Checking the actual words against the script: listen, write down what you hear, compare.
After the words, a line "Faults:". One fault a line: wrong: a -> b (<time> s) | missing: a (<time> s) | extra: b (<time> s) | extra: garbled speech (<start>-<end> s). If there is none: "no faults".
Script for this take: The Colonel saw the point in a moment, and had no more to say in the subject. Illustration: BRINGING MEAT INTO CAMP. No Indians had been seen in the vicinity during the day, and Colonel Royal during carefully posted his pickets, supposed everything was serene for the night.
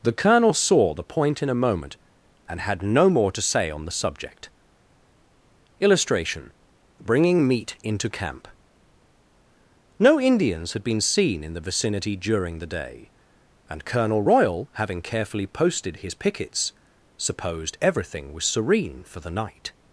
The Colonel saw the point in a moment, and had no more to say on the subject. Illustration: BRINGING MEAT INTO CAMP. No Indians had been seen in the vicinity during the day, and Colonel Royal having carefully posted his pickets, supposed everything was serene for the night.
Faults:
wrong: in -> on (3.7 s)
wrong: during -> having (14.7 s)